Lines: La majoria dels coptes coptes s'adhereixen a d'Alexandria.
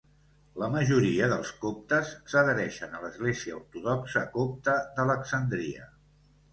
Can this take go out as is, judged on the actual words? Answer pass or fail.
fail